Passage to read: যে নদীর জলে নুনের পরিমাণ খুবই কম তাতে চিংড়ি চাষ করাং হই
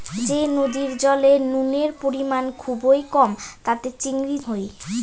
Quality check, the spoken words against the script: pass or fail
fail